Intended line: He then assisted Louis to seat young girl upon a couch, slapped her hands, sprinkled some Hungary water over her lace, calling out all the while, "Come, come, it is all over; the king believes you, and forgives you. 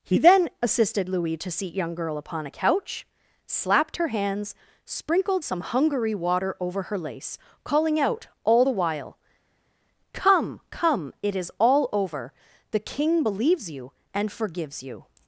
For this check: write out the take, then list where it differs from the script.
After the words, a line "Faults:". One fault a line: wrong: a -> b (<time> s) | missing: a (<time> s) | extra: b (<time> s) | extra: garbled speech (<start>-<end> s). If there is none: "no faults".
He then assisted Louis to seat young girl upon a couch, slapped her hands, sprinkled some Hungary water over her lace, calling out all the while, "Come, come, it is all over; the king believes you, and forgives you.
Faults:
no faults